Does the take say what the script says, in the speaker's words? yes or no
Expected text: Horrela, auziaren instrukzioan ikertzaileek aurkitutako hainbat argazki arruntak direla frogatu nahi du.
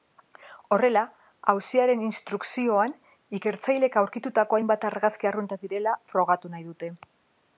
no